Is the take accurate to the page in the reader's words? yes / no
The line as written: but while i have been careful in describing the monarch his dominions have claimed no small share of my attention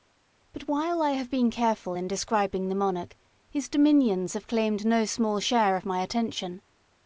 yes